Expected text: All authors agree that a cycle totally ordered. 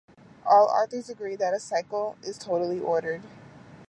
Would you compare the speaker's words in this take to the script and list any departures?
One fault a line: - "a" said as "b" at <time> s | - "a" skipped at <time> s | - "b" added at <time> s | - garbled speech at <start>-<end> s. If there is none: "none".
- "is" added at 2.2 s